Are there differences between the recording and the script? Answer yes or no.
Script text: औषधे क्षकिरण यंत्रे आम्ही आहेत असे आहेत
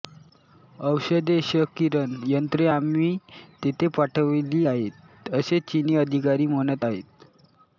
yes